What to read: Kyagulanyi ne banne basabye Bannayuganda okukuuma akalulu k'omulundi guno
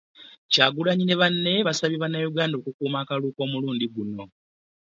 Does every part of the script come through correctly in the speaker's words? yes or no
yes